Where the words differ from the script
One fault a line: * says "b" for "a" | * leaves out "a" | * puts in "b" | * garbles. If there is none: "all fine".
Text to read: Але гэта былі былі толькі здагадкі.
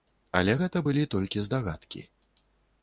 * leaves out "былі"